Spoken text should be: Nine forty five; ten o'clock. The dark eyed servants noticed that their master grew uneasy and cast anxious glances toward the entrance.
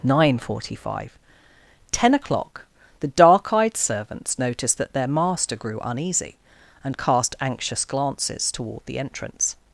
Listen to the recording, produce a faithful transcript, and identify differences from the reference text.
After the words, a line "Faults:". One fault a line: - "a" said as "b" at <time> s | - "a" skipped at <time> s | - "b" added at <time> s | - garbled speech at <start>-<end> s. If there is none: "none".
Nine forty five; ten o'clock. The dark eyed servants noticed that their master grew uneasy and cast anxious glances toward the entrance.
Faults:
none